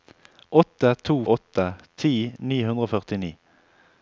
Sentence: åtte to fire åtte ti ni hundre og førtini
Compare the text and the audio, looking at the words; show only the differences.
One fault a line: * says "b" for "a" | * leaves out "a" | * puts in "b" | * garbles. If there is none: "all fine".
* leaves out "fire"